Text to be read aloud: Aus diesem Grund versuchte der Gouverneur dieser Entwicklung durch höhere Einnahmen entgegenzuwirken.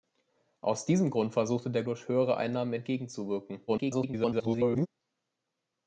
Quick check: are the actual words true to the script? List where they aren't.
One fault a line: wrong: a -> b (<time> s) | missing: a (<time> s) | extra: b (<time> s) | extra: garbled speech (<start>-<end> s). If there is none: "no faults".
missing: Gouverneur dieser Entwicklung (1.8 s)
extra: garbled speech (3.7-4.9 s)